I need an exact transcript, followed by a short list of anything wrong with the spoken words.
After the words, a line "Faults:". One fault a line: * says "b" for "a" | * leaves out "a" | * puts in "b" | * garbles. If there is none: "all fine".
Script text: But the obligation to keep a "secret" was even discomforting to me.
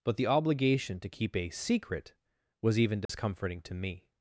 But the obligation to keep a "secret" was even discomforting to me.
Faults:
all fine